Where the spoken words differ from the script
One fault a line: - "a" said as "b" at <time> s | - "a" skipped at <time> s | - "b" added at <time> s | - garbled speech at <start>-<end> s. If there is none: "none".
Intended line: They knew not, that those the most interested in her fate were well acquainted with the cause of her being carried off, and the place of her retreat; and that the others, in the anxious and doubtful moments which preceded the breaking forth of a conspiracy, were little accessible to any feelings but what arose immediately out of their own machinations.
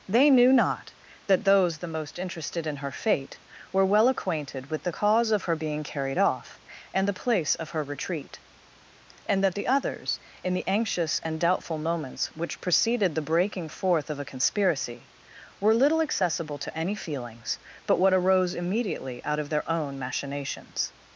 none